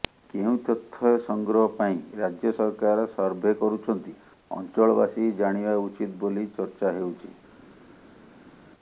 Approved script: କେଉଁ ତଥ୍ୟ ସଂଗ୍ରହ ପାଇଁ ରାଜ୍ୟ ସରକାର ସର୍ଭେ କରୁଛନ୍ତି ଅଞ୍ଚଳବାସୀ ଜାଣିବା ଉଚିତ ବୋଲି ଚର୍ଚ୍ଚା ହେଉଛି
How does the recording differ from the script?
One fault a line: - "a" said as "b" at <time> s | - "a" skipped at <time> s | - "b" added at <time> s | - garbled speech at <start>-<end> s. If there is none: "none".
none